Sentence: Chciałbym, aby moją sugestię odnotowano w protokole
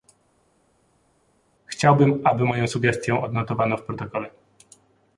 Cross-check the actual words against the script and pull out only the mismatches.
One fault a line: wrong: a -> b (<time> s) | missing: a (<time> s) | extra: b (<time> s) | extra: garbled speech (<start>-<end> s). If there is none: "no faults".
no faults